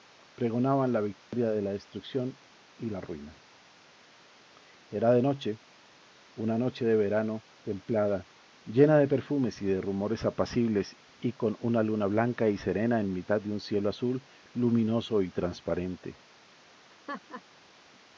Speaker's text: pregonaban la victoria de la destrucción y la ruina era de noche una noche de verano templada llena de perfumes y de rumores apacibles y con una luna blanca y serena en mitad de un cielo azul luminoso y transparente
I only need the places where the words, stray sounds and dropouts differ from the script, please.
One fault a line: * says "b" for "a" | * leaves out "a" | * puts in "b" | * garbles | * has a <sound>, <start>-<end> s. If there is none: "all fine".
* has a dropout, 1.2-1.3 s
* has a laugh, 16.9-17.4 s